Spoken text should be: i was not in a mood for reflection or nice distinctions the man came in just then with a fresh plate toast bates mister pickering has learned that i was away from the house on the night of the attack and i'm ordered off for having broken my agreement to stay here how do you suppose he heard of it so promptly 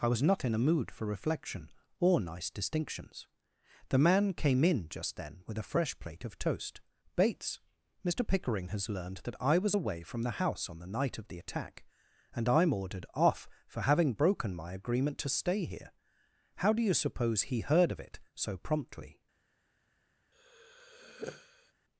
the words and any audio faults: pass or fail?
fail